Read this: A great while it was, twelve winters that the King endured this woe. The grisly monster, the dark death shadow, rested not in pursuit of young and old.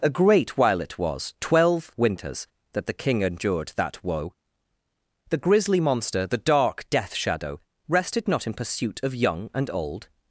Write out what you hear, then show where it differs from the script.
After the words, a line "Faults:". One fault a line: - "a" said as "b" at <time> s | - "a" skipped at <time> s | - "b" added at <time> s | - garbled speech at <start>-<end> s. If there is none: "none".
A great while it was, twelve winters that the King endured that woe. The grisly monster, the dark death shadow, rested not in pursuit of young and old.
Faults:
- "this" said as "that" at 3.8 s